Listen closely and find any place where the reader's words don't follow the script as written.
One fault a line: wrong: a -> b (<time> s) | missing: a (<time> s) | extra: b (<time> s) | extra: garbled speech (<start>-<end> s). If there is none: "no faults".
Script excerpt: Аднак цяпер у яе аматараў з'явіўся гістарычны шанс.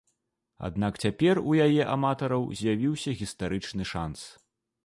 no faults